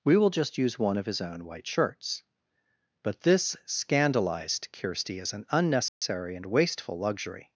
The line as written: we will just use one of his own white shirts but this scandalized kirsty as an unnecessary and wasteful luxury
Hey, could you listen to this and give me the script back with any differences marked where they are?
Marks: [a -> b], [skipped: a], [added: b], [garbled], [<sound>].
we will just use one of his own white shirts but this scandalized kirsty as an unnecessary [dropout] and wasteful luxury